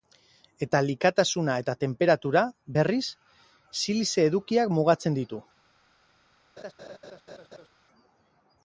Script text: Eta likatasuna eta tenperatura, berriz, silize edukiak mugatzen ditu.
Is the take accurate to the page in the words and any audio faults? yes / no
no